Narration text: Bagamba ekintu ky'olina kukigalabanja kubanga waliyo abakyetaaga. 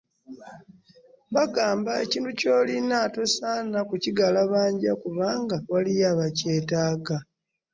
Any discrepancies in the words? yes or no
yes